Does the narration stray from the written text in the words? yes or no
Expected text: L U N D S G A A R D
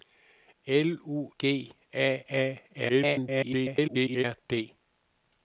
yes